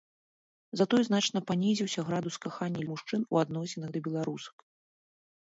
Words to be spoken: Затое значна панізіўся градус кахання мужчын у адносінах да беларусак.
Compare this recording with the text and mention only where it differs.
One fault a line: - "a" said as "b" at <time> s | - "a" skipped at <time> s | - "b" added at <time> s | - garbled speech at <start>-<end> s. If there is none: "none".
none